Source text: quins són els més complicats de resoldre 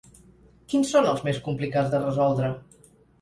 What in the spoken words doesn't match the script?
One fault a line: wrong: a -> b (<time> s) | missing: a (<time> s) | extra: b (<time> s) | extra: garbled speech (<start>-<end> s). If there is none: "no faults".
no faults